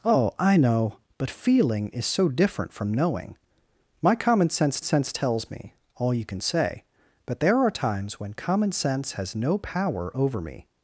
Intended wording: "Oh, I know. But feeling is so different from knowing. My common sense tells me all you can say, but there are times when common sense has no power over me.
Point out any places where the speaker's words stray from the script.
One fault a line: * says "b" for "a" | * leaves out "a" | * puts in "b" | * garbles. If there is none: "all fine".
* puts in "sense"